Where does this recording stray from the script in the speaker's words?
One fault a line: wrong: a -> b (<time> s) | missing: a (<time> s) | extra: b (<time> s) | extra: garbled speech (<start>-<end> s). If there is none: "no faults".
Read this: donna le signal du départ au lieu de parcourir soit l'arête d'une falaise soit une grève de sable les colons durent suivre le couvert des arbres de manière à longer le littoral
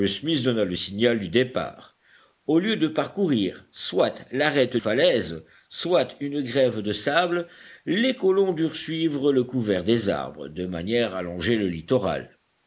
missing: d'une (4.8 s)